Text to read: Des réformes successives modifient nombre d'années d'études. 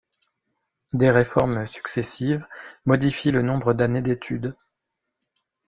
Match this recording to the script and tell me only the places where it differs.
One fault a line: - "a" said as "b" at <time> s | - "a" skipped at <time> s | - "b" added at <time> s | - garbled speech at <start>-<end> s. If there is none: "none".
- "le" added at 3.3 s